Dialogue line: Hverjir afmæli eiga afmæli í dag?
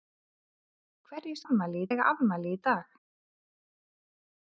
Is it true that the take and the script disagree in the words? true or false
false